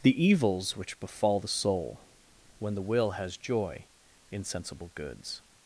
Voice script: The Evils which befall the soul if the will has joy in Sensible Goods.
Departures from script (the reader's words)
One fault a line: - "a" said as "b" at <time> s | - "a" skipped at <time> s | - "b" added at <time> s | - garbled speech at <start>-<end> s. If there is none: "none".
- "if" said as "when" at 2.6 s